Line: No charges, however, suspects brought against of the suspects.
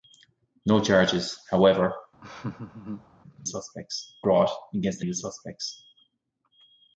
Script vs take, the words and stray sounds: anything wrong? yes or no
yes